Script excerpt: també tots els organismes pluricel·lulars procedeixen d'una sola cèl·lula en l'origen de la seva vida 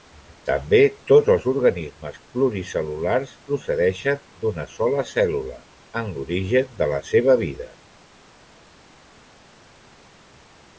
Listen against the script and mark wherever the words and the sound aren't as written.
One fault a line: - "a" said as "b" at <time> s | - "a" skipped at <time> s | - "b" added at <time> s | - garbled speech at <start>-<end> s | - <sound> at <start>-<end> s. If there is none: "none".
none